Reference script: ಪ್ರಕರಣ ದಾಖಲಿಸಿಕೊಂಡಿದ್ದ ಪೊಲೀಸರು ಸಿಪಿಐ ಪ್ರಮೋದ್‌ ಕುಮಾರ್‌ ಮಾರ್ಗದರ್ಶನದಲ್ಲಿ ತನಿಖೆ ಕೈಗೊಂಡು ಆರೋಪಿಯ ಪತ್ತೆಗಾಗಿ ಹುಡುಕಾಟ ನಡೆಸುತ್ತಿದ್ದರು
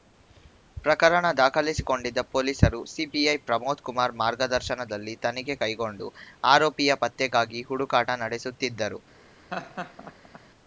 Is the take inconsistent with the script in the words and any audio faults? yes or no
yes